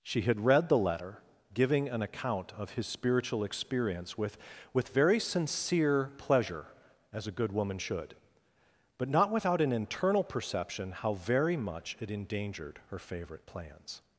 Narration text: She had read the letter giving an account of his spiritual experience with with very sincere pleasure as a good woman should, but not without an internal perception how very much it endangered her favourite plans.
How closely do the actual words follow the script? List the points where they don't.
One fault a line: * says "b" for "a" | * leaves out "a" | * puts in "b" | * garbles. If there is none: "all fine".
all fine